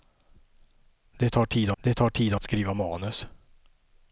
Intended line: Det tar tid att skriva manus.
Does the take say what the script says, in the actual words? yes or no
no